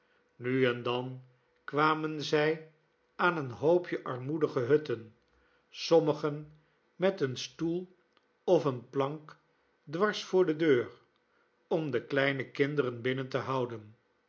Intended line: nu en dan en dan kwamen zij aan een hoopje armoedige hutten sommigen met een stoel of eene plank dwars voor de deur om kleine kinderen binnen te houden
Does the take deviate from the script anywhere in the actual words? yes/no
yes